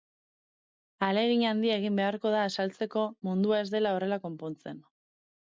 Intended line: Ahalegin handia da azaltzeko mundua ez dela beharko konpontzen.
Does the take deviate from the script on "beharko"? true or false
true